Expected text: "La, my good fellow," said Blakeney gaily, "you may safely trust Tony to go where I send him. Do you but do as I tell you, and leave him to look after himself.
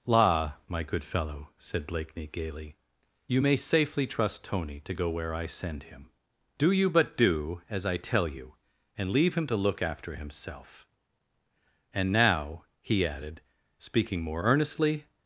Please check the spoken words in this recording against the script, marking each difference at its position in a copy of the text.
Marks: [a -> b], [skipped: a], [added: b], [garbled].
"La, my good fellow," said Blakeney gaily, "you may safely trust Tony to go where I send him. Do you but do as I tell you, and leave him to look after himself. [added: And now he added speaking more earnestly]